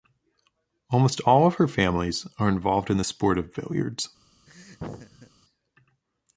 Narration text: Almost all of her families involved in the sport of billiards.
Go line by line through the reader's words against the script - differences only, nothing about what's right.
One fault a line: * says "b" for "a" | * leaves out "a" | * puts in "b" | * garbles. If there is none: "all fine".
* puts in "are"